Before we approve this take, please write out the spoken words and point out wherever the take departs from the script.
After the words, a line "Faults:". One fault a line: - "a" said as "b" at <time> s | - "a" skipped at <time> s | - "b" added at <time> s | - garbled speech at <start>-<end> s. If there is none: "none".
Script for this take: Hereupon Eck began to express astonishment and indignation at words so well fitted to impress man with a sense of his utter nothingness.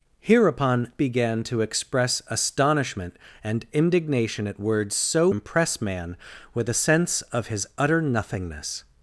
Hereupon Began to express astonishment and indignation at words so impress man with a sense of his utter nothingness.
Faults:
- "Eck" skipped at 0.9 s
- "well fitted to" skipped at 5.3 s